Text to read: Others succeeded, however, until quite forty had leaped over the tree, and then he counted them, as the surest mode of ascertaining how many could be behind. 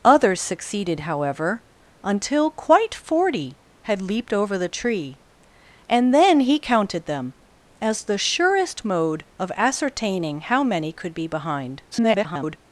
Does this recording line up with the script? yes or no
no